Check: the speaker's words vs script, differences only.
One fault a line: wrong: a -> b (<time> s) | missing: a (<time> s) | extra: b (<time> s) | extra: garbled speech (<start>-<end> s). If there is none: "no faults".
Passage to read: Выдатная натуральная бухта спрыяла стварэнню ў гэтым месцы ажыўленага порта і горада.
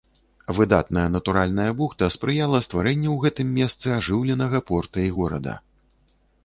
no faults